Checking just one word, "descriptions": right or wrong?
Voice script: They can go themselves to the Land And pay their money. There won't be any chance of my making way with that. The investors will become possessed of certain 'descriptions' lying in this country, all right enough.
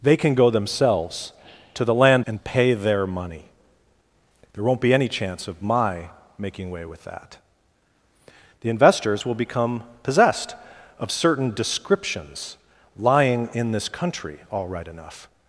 right